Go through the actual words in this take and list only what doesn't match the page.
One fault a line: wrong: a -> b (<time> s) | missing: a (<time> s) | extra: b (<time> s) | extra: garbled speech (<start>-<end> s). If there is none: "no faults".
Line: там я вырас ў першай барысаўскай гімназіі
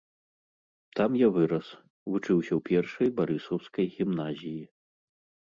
extra: вучыўся (2.1 s)